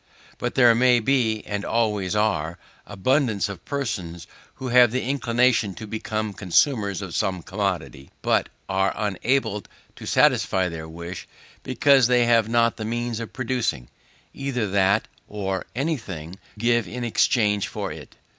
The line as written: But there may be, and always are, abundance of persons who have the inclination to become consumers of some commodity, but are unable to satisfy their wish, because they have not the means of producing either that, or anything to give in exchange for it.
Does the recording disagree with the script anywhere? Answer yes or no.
yes